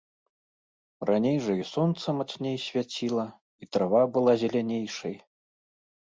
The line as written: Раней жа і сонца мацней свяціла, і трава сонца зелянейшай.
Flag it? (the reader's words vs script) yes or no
yes